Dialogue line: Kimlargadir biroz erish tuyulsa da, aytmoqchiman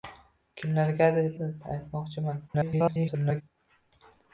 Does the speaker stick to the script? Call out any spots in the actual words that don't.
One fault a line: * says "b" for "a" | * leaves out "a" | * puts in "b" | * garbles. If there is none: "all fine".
* leaves out "biroz erish tuyulsa"
* garbles